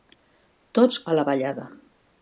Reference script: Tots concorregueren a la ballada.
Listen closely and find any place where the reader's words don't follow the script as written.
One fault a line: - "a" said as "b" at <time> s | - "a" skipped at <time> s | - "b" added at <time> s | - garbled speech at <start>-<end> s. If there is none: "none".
- "concorregueren" skipped at 1.0 s